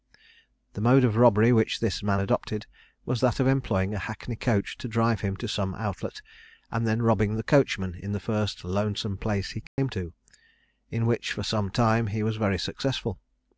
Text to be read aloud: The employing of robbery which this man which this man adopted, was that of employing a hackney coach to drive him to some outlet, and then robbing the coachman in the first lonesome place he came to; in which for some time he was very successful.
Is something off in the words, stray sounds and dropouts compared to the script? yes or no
yes